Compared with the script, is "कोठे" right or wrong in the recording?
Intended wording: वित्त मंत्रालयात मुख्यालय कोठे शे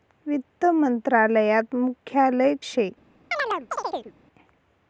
wrong